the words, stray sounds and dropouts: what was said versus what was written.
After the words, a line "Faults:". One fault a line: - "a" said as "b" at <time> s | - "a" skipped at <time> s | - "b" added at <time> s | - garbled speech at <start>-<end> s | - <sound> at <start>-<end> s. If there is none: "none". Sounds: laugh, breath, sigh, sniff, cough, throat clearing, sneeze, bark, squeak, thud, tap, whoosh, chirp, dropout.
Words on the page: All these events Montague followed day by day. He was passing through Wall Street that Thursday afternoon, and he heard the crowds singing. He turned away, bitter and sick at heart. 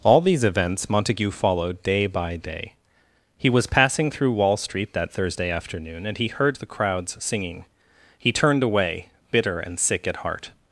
All these events Montague followed day by day. He was passing through Wall Street that Thursday afternoon, and he heard the crowds singing. He turned away, bitter and sick at heart.
Faults:
none